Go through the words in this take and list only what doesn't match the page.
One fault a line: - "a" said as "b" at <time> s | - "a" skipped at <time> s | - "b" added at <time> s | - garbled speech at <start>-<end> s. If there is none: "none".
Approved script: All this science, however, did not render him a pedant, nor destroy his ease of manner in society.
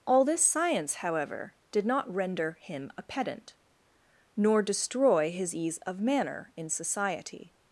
none